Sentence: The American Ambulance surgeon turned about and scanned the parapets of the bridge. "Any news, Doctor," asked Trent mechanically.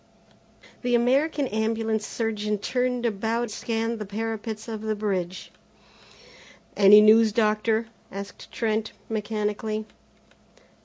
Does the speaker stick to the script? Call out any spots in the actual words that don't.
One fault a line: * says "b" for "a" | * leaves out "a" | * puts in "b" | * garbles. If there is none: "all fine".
* leaves out "and"